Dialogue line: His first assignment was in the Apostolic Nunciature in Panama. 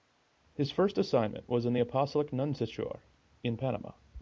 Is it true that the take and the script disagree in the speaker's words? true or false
false